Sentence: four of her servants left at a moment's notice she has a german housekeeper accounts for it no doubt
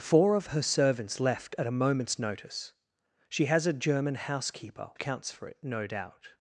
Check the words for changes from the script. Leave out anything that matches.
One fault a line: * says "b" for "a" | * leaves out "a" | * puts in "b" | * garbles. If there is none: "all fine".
all fine